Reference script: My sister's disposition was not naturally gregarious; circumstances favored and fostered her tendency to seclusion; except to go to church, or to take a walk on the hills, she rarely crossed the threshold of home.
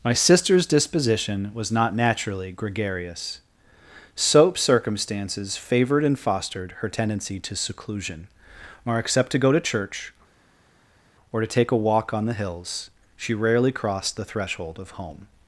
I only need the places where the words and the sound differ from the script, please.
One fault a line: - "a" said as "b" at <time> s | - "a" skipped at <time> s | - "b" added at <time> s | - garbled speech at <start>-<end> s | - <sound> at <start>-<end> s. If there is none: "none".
- "soap" added at 4.2 s
- "or" added at 8.8 s